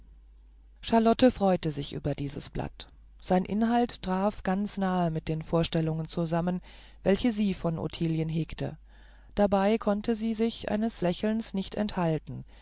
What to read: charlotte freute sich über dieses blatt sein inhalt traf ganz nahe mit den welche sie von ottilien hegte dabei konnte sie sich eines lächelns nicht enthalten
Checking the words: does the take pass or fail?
fail